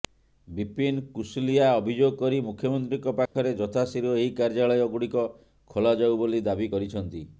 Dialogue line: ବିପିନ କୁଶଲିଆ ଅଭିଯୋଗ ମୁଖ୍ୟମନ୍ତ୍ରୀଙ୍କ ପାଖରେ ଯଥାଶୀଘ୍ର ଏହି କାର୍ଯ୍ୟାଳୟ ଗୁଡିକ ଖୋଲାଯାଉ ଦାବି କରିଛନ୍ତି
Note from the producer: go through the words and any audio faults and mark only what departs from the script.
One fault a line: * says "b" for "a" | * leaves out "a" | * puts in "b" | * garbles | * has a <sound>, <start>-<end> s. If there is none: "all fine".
* puts in "କରି"
* has a dropout, 3.3-3.4 s
* puts in "ବୋଲି"